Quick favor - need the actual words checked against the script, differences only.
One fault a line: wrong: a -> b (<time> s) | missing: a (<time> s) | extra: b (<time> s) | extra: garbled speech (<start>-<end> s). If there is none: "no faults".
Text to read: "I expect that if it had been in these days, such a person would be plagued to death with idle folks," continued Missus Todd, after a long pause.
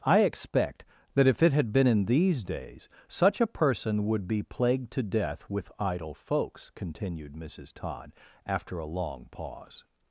no faults